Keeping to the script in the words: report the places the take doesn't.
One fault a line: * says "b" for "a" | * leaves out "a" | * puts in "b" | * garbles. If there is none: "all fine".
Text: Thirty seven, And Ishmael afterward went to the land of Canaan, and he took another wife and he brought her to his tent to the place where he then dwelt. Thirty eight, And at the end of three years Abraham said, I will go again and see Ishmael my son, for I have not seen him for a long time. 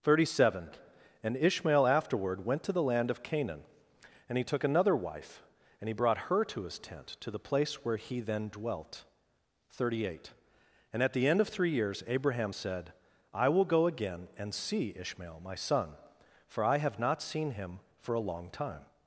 all fine